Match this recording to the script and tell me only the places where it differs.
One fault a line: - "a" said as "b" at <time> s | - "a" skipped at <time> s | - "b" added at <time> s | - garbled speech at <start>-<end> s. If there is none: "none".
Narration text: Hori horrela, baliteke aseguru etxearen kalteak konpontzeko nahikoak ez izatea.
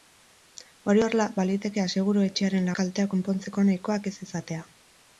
none